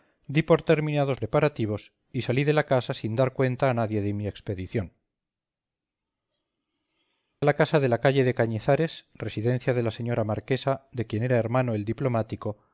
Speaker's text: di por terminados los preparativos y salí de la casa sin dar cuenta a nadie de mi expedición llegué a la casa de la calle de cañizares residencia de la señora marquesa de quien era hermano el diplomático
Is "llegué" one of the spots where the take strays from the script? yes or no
yes